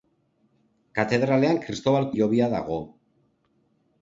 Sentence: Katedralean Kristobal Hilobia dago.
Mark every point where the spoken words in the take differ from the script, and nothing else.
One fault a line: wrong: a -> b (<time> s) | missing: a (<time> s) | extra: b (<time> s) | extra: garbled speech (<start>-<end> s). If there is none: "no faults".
no faults